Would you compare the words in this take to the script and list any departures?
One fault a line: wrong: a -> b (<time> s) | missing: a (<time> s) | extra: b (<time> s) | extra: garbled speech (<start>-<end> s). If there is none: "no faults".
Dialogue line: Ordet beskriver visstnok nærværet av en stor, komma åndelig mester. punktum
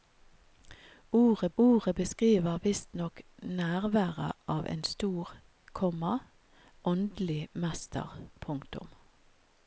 extra: ordet (1.6 s)